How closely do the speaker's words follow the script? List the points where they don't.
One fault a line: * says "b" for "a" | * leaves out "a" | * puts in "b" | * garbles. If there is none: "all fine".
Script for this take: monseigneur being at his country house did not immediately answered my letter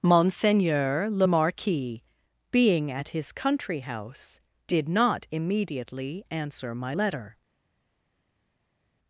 * puts in "le marquis"
* says "answer" for "answered"